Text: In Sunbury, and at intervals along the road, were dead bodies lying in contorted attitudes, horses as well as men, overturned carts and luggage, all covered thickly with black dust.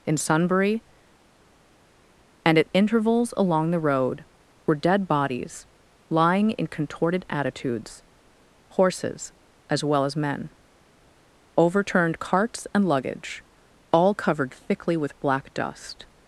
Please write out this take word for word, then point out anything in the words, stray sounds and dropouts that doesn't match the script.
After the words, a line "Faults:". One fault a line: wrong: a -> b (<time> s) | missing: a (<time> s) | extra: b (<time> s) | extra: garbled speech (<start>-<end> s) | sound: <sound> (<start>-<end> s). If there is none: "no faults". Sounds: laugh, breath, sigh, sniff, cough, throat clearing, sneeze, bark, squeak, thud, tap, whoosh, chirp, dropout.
In Sunbury, and at intervals along the road, were dead bodies lying in contorted attitudes, horses as well as men, overturned carts and luggage, all covered thickly with black dust.
Faults:
no faults